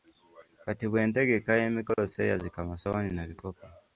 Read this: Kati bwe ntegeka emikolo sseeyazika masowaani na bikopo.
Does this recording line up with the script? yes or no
yes